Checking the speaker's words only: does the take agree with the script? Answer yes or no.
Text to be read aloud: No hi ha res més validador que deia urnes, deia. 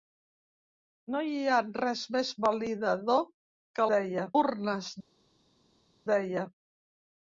yes